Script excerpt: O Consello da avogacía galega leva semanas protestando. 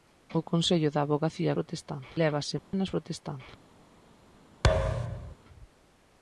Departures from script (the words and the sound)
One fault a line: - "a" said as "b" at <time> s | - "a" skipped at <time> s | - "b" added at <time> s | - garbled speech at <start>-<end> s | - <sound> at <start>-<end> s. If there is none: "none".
- "galega" said as "protestando" at 1.6 s
- dropout at 2.6-2.7 s
- thud at 4.6-5.4 s